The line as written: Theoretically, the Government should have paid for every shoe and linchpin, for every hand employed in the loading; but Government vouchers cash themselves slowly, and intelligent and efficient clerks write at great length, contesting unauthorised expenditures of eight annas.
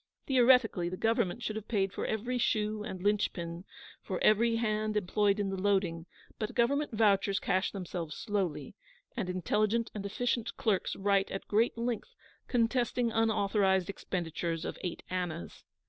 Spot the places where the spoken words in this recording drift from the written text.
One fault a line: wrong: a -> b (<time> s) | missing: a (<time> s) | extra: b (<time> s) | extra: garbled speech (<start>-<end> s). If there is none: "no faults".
no faults